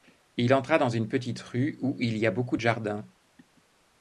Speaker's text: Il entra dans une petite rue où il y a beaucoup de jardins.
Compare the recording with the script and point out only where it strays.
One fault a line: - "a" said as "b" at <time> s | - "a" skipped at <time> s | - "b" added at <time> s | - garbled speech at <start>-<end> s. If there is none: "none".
none